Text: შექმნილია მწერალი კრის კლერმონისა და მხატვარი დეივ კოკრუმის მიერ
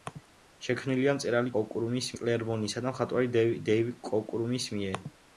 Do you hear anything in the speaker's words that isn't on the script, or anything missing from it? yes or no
yes